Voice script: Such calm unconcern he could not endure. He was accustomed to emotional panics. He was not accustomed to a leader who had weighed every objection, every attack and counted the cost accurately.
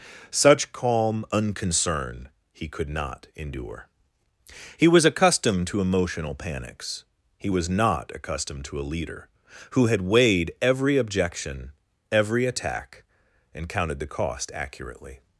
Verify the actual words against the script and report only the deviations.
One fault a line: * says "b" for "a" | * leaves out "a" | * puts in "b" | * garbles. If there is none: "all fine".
all fine